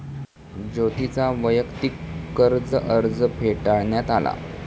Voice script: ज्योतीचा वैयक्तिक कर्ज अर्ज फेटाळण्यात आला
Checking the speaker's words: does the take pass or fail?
pass